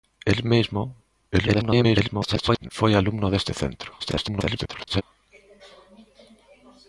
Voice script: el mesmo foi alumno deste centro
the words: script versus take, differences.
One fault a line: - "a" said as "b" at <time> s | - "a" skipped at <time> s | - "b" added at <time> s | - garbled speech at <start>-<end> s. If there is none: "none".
- garbled speech at 1.3-2.7 s
- garbled speech at 4.0-5.0 s